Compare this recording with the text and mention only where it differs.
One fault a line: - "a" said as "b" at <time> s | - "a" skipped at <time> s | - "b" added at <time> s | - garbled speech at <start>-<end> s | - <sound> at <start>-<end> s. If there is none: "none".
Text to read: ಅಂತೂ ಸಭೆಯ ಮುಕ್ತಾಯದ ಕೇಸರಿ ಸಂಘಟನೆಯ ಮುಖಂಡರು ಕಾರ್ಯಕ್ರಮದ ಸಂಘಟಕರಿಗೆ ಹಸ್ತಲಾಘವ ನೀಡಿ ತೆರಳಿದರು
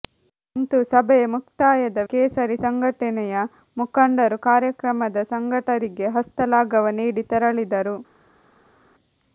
none